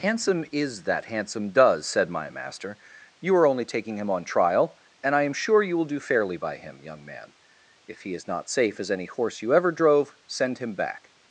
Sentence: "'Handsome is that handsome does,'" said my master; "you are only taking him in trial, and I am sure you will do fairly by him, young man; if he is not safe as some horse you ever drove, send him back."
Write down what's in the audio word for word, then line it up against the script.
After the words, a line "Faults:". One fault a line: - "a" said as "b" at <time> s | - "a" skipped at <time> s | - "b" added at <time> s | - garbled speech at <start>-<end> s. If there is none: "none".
"'Handsome is that handsome does,'" said my master; "you are only taking him on trial, and I am sure you will do fairly by him, young man; if he is not safe as any horse you ever drove, send him back."
Faults:
- "in" said as "on" at 4.1 s
- "some" said as "any" at 8.9 s